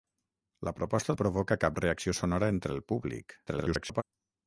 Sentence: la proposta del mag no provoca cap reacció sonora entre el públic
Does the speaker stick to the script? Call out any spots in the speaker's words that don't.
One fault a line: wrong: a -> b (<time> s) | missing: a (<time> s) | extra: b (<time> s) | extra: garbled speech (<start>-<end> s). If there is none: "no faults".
missing: del mag (1.1 s)
extra: garbled speech (3.5-4.0 s)